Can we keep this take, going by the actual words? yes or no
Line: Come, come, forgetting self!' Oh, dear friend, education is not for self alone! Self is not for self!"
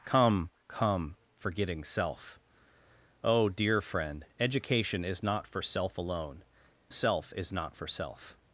yes